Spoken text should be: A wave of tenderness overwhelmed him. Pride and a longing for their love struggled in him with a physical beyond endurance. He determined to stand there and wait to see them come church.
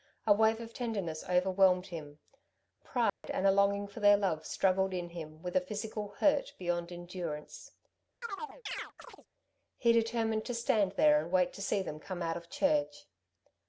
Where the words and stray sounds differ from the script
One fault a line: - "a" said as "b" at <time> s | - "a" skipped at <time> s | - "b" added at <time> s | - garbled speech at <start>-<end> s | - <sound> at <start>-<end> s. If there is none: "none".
- dropout at 3.1-3.2 s
- "hurt" added at 6.2 s
- chirp at 8.2-9.3 s
- "out of" added at 12.2 s